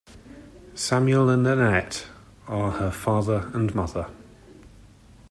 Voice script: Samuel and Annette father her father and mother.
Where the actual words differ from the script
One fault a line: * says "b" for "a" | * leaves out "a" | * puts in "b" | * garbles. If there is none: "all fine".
* says "are" for "father"